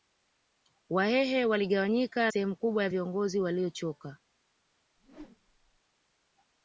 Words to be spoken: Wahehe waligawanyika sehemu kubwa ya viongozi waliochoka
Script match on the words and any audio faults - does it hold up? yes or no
no